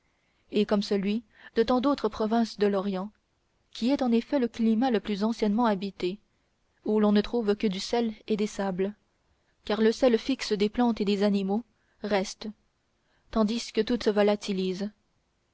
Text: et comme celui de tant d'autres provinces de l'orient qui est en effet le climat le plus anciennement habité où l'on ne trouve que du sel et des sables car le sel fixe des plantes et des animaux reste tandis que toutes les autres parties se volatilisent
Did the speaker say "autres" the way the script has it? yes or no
no